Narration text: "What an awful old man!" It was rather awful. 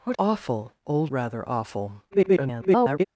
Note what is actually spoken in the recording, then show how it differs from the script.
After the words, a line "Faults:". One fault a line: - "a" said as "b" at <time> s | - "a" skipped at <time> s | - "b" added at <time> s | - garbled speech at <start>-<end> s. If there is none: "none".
"What awful old rather awful. [garbled]
Faults:
- "an" skipped at 0.2 s
- "man It was" skipped at 1.1 s
- garbled speech at 2.1-3.0 s